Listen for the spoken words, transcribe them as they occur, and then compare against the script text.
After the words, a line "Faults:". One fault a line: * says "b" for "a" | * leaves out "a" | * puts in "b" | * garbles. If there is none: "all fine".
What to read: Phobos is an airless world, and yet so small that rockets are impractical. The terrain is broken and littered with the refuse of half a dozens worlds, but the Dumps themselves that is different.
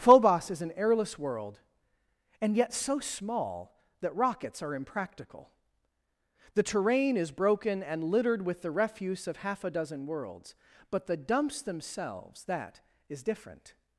Phobos is an airless world, and yet so small that rockets are impractical. The terrain is broken and littered with the refuse of half a dozen worlds, but the Dumps themselves that is different.
Faults:
* says "dozen" for "dozens"